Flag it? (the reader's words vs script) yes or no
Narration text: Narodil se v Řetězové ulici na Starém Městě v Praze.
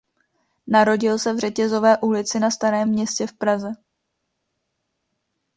no